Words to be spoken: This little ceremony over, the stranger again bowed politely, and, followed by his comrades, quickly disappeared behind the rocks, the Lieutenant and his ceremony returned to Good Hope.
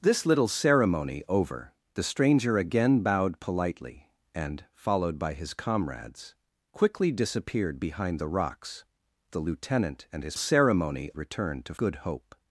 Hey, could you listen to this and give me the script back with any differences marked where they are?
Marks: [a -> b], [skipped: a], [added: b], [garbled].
This little ceremony over, the stranger again bowed politely, and, followed by his comrades, quickly disappeared behind the rocks, the Lieutenant and his ceremony returned to Good Hope.